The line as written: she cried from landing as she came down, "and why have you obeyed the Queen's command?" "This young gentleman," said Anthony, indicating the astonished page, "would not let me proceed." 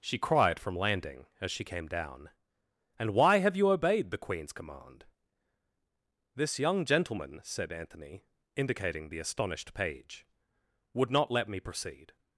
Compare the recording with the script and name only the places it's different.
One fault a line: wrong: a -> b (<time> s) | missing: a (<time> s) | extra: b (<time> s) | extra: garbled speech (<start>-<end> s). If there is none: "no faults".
no faults